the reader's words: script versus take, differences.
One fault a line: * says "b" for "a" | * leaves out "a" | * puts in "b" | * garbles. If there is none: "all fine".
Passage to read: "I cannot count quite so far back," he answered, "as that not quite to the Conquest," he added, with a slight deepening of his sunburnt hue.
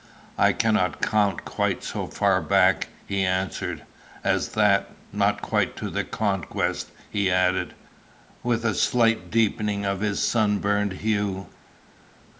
all fine